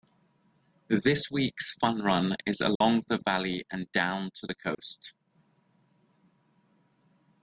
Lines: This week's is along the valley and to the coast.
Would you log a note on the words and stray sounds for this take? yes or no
yes